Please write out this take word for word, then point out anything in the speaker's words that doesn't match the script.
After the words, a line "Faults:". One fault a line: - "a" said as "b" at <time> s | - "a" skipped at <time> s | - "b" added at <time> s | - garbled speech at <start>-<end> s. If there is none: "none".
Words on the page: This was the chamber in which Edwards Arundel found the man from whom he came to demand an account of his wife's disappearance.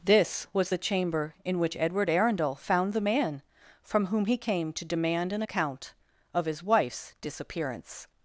This was the chamber in which Edward Arundel found the man from whom he came to demand an account of his wife's disappearance.
Faults:
- "Edwards" said as "Edward" at 1.8 s